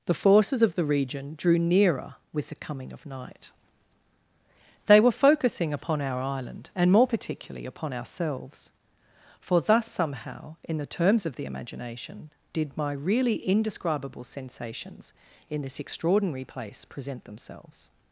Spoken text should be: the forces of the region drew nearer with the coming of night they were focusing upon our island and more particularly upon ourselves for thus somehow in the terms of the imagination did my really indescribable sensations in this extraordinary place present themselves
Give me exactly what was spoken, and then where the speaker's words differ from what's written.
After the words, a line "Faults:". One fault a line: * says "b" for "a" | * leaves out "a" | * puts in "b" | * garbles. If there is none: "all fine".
the forces of the region drew nearer with the coming of night they were focusing upon our island and more particularly upon ourselves for thus somehow in the terms of the imagination did my really indescribable sensations in this extraordinary place present themselves
Faults:
all fine